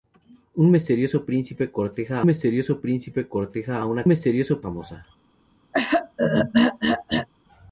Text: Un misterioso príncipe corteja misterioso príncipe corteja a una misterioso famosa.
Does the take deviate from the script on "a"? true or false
false